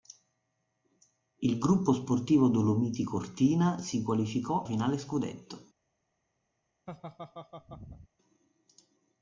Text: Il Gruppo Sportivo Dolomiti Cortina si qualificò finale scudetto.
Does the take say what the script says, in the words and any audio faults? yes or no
no